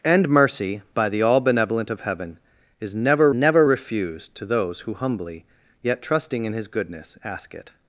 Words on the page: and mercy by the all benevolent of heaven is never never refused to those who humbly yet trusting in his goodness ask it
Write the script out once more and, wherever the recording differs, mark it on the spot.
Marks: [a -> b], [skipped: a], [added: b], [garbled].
and mercy by the all benevolent of heaven is never never refused to those who humbly yet trusting in his goodness ask it